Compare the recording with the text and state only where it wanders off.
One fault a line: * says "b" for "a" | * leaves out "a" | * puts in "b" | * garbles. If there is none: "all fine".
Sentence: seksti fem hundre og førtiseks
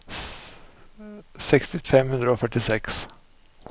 all fine